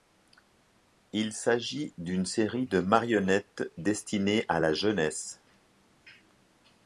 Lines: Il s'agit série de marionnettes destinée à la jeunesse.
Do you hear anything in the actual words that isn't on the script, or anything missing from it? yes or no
yes